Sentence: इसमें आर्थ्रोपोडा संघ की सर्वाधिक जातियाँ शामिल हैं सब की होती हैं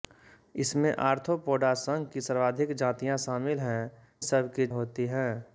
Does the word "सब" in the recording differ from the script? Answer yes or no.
no